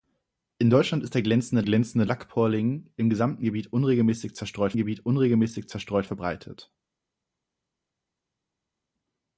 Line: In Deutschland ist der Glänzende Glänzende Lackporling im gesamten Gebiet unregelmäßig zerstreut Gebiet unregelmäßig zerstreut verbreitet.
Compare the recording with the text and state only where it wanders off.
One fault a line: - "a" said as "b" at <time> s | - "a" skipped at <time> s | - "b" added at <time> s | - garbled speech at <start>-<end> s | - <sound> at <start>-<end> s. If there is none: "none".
none